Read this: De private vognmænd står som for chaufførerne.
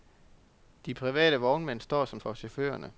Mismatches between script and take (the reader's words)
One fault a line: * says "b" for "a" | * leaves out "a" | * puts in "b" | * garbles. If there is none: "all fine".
all fine